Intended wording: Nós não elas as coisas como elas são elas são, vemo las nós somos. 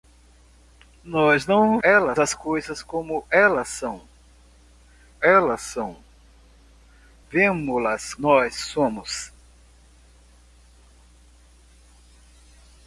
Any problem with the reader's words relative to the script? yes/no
no